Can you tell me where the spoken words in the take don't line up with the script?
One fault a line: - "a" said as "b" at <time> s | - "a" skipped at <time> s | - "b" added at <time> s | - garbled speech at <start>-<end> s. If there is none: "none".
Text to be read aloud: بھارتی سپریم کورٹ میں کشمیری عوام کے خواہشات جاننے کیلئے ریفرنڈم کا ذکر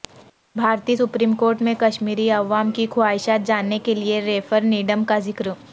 - "کے" said as "کی" at 2.7 s